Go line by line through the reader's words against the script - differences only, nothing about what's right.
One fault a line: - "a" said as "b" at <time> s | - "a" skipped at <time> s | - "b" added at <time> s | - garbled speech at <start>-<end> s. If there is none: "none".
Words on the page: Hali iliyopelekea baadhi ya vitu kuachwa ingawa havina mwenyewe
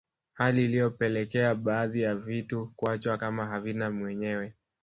- "ingawa" said as "kama" at 3.1 s